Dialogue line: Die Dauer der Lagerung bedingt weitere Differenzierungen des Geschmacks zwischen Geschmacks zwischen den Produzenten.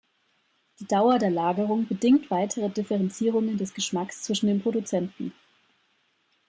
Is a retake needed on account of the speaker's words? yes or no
yes